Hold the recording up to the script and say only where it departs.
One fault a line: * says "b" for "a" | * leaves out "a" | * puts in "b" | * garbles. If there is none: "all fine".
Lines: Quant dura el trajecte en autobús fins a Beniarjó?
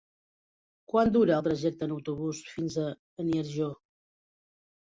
all fine